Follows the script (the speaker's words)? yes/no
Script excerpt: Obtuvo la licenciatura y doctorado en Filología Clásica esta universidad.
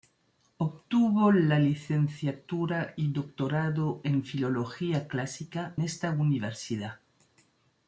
yes